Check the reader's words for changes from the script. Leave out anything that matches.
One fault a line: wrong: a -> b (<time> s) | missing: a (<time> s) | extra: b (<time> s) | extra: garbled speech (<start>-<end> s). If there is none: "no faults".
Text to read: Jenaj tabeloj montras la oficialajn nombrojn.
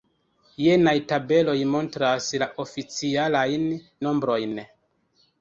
no faults